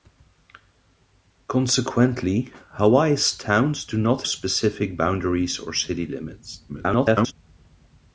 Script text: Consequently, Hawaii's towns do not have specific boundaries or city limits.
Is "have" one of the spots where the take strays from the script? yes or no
yes